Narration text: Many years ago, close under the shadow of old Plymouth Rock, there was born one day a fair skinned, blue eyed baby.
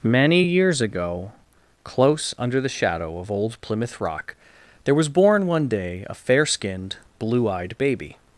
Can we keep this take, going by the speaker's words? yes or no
yes